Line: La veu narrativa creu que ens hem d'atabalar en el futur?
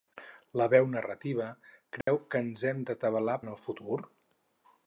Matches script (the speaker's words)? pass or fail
pass